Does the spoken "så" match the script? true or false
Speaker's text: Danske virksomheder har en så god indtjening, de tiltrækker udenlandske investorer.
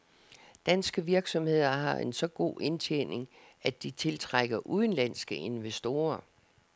true